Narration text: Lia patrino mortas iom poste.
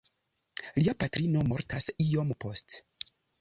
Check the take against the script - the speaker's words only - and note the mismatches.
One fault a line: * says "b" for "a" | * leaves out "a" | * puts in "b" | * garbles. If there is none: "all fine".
all fine